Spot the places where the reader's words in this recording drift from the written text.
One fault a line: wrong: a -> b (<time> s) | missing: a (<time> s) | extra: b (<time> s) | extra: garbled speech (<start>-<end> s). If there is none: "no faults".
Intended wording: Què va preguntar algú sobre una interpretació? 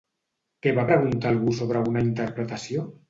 no faults